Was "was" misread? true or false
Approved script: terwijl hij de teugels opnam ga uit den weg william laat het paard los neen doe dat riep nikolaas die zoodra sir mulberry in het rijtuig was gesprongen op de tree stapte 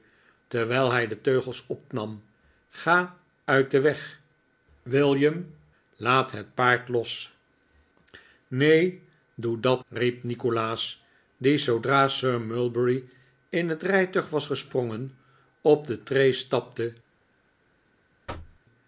false